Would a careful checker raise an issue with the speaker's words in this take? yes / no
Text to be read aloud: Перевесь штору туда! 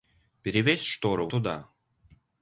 no